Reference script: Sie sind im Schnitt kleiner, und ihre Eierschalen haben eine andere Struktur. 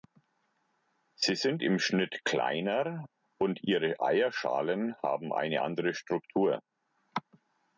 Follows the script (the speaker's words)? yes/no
yes